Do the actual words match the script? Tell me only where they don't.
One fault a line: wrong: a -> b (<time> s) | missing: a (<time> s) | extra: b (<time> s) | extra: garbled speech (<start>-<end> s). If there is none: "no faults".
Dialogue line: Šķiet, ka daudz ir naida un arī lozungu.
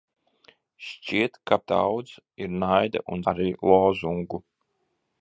no faults